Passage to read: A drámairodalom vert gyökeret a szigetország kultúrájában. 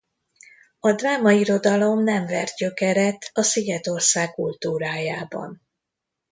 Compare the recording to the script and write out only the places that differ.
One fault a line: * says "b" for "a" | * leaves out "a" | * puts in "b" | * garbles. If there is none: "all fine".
* puts in "nem"